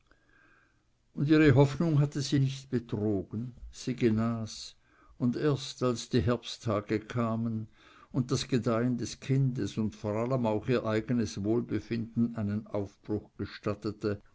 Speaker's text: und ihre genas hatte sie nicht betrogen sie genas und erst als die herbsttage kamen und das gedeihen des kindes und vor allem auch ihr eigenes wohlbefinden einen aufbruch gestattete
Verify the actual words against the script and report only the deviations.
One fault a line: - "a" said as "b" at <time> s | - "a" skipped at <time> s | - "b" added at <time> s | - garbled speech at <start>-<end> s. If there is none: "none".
- "genas" said as "hoffnung" at 1.6 s